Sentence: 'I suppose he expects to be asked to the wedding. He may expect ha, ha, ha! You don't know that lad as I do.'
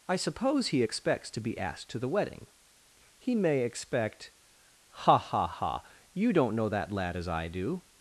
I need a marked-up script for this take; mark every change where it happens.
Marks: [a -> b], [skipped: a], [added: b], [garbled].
'I suppose he expects to be asked to the wedding. He may expect ha, ha, ha! You don't know that lad as I do.'